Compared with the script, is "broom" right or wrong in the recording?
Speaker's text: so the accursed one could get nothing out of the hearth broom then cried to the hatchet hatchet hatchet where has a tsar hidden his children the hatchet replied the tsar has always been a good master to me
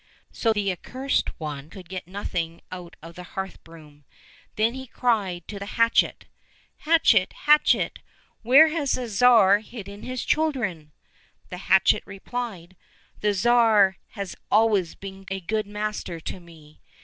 right